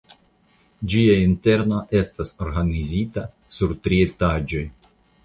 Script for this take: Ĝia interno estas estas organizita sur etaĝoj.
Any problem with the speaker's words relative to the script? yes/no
yes